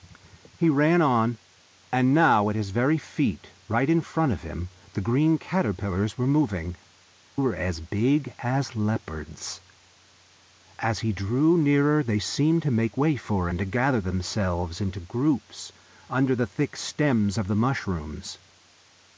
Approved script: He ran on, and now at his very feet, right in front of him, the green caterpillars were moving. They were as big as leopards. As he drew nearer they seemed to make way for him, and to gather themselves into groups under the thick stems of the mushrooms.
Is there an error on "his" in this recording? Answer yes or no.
no